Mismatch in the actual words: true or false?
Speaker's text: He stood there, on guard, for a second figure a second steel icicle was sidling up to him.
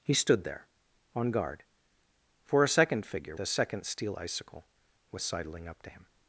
false